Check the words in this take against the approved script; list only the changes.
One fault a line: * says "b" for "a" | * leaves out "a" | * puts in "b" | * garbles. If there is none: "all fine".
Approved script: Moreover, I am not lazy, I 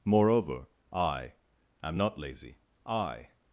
all fine